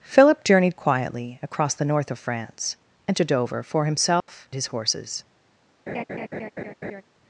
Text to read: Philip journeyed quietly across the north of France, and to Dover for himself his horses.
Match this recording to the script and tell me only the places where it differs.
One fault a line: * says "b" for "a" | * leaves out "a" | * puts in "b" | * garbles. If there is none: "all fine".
all fine